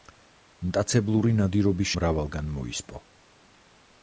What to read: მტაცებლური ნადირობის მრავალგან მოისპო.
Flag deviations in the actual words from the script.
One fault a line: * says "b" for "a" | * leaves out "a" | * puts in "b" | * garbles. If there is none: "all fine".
all fine